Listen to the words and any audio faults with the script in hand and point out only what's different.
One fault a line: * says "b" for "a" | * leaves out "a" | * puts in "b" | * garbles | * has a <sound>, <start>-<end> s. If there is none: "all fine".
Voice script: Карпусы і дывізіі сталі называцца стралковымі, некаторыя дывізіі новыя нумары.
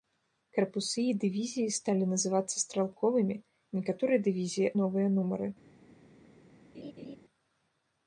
* has a laugh, 6.7-7.2 s